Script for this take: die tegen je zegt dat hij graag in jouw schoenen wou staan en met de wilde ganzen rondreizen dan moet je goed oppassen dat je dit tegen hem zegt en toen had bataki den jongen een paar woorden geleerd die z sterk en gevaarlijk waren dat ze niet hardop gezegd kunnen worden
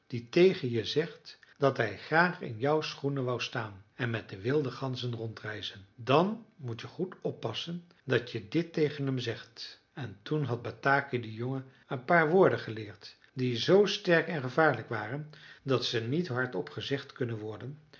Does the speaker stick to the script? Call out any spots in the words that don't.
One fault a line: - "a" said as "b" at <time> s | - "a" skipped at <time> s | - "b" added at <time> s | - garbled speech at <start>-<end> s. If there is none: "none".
none